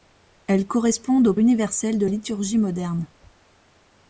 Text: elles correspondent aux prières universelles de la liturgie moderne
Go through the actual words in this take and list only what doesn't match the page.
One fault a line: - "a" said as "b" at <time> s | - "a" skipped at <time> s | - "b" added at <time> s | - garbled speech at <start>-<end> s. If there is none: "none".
- "prières" skipped at 1.4 s
- "la" skipped at 2.1 s